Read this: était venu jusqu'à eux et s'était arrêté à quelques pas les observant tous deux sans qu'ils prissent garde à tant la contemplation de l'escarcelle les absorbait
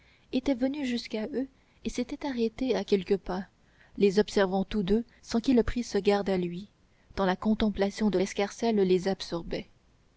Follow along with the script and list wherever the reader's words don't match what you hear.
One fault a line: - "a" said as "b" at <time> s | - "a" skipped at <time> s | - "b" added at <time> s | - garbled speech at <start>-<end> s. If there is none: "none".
- "lui" added at 6.4 s